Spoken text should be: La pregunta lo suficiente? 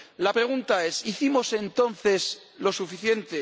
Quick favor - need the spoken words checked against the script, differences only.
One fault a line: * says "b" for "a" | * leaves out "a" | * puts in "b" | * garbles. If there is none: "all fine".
* puts in "es hicimos entonces"